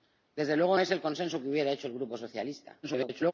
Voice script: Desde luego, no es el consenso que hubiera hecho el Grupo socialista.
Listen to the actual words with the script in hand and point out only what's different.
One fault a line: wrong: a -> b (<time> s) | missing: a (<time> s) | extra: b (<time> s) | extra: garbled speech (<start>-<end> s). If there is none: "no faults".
missing: no (0.8 s)
extra: garbled speech (2.8-3.3 s)